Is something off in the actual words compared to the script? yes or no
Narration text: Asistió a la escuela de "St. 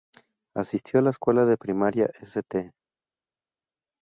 yes